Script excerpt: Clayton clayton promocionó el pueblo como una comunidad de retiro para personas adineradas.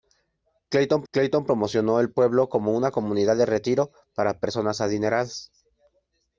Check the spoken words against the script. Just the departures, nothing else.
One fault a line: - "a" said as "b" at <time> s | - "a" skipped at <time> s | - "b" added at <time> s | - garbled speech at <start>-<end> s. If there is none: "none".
none